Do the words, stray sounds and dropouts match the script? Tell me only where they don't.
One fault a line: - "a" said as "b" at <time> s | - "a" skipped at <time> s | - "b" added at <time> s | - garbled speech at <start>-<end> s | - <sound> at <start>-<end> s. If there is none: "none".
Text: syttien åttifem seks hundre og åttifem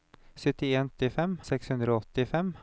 none